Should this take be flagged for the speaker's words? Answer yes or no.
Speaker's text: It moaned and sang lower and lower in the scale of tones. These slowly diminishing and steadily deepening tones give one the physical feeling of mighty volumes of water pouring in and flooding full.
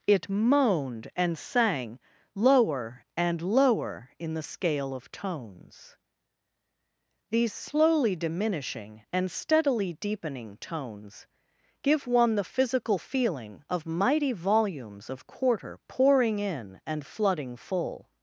yes